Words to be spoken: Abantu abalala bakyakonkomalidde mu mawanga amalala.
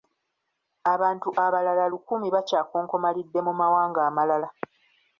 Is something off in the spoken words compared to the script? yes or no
yes